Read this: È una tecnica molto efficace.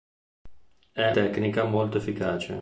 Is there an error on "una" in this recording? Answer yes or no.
yes